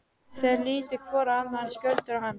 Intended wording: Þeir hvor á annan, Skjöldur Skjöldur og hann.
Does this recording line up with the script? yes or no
no